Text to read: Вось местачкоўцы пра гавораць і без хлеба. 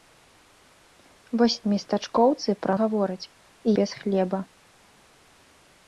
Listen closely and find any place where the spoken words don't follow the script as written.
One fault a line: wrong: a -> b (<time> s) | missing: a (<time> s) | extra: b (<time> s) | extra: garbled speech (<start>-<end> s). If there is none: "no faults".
no faults